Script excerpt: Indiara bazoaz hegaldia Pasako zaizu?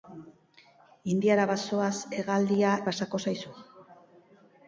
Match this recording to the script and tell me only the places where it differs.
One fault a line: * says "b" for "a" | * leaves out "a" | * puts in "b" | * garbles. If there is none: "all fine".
all fine